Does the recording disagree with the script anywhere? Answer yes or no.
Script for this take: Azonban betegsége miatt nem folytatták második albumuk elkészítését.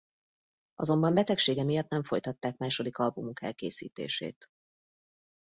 no